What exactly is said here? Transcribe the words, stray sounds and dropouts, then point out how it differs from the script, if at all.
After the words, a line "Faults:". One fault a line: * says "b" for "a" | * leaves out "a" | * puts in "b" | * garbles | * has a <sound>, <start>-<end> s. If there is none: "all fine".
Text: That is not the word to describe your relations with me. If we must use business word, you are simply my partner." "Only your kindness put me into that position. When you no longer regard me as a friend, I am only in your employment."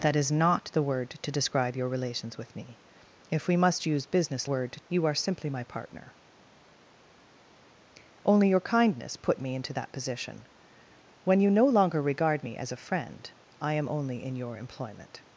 That is not the word to describe your relations with me. If we must use business word, you are simply my partner." "Only your kindness put me into that position. When you no longer regard me as a friend, I am only in your employment."
Faults:
all fine